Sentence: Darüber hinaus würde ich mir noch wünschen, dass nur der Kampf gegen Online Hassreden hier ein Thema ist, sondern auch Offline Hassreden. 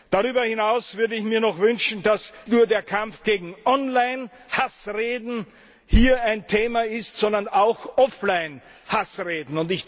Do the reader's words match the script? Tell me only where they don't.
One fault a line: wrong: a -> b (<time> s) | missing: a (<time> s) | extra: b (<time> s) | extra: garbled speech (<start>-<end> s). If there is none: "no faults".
no faults